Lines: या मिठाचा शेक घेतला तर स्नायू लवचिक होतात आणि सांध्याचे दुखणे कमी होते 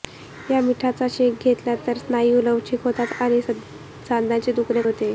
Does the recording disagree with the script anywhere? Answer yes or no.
yes